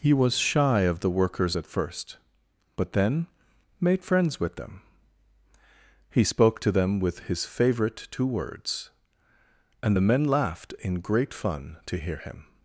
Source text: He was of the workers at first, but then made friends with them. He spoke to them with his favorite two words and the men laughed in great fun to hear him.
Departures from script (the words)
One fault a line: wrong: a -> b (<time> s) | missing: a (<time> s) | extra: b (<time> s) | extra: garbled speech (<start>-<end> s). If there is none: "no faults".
extra: shy (0.3 s)